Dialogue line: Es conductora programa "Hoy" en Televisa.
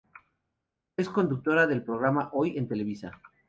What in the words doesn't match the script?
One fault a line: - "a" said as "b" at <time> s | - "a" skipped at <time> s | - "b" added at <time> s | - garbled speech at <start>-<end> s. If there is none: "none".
- "del" added at 1.7 s